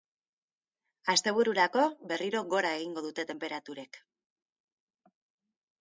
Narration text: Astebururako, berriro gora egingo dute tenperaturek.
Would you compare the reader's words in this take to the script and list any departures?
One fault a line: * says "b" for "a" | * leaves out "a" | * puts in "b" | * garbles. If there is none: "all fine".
all fine